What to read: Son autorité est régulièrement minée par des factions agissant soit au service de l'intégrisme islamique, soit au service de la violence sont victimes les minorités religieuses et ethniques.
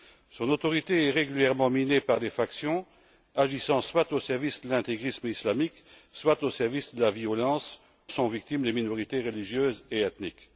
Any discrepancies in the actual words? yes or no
no